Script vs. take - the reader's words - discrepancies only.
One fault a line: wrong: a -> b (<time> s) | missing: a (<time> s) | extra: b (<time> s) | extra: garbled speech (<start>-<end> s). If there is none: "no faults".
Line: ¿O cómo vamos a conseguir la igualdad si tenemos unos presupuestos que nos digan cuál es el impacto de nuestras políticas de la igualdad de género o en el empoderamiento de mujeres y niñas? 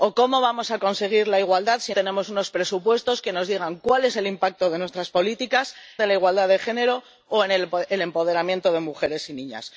no faults